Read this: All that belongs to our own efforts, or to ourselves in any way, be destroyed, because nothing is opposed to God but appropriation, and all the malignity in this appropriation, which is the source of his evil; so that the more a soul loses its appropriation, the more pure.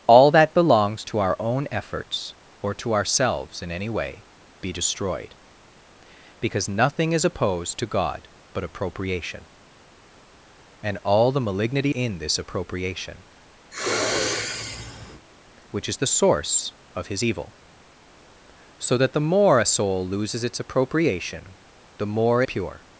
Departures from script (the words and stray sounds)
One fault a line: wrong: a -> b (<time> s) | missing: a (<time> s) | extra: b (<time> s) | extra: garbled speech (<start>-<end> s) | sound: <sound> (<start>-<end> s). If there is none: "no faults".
sound: sniff (13.7-15.3 s)